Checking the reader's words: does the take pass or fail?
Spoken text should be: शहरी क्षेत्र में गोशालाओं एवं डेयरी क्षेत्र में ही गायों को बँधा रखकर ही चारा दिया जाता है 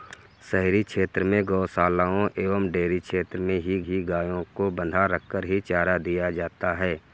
fail